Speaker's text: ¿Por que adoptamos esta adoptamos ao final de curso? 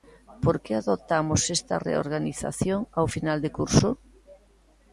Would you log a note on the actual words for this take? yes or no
yes